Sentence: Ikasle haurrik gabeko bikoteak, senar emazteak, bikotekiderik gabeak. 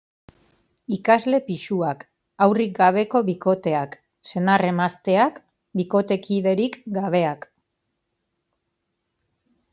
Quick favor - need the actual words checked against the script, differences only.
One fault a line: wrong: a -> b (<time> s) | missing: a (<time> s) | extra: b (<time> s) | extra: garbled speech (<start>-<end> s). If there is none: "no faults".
extra: pisuak (1.5 s)